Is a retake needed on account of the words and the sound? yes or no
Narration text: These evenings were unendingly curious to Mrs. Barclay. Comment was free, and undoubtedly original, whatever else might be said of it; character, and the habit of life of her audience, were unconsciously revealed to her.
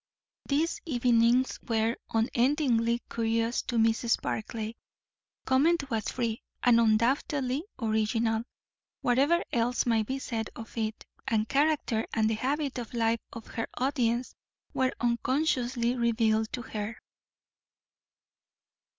yes